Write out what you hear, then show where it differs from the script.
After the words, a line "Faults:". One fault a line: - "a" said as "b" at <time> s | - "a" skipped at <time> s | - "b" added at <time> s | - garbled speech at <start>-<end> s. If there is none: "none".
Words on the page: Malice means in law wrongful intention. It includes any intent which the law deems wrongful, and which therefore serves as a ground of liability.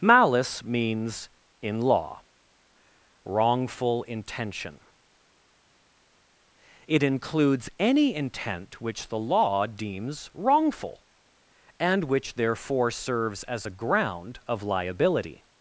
Malice means in law wrongful intention. It includes any intent which the law deems wrongful, and which therefore serves as a ground of liability.
Faults:
none